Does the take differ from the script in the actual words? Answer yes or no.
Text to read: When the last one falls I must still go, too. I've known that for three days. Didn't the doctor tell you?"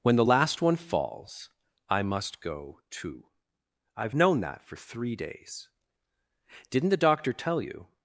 yes